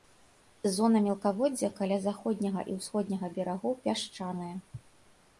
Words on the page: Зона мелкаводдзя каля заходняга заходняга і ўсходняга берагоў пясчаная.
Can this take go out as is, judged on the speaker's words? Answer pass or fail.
fail